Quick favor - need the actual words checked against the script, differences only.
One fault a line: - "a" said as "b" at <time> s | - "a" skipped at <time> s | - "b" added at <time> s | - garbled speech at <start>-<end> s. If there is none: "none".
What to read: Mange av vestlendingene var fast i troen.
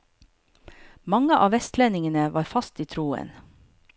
none